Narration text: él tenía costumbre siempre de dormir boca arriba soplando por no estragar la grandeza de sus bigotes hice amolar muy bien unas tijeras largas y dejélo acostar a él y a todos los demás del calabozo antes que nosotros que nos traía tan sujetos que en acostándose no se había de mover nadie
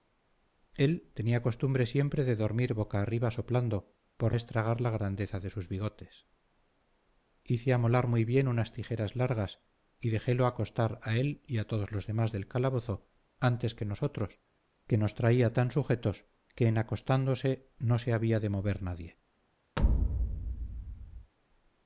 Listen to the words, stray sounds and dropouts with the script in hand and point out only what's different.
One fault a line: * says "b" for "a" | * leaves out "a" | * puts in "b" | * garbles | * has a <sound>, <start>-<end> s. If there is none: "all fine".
* leaves out "no"
* has a thud, 19.8-21.3 s